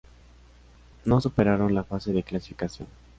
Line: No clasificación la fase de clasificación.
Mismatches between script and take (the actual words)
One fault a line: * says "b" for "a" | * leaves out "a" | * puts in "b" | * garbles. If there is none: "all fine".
* says "superaron" for "clasificación"